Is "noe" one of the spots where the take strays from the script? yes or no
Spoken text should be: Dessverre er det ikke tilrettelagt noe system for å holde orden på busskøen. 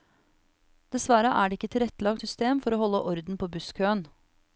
yes